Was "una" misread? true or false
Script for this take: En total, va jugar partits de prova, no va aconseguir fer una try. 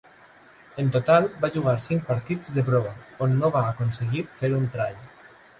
true